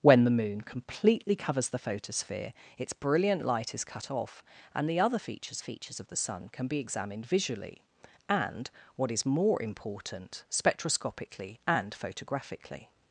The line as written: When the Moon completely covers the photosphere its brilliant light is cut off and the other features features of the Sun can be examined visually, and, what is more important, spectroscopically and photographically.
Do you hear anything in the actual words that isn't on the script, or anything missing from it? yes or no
no